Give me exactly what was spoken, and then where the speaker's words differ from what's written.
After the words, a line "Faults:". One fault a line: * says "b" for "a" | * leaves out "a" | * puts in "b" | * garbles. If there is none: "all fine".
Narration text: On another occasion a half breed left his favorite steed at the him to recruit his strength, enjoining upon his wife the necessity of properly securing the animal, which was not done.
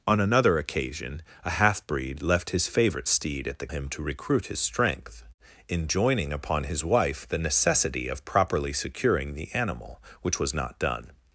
On another occasion a half breed left his favorite steed at the him to recruit his strength, enjoining upon his wife the necessity of properly securing the animal, which was not done.
Faults:
all fine